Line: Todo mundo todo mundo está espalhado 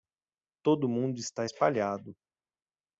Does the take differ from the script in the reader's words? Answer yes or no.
yes